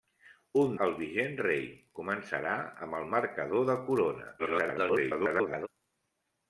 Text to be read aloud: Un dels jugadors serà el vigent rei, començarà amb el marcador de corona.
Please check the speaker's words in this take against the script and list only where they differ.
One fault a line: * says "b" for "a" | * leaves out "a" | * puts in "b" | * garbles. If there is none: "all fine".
* leaves out "dels jugadors serà"
* garbles